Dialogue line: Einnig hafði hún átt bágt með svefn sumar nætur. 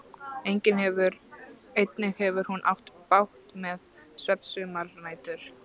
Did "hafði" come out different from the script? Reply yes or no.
yes